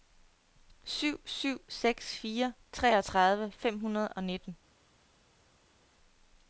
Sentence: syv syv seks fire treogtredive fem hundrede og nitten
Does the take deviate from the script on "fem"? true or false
false